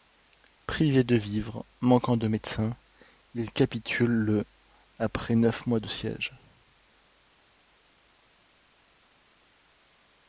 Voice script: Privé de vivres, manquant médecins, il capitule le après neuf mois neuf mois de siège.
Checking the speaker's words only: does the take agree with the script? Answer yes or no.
no